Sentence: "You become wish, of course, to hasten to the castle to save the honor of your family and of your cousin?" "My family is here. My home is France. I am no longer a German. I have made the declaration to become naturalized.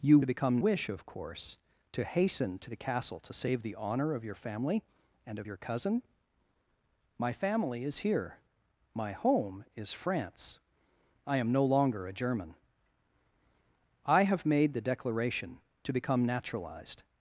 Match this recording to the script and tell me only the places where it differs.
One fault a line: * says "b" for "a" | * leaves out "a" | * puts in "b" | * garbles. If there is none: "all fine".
all fine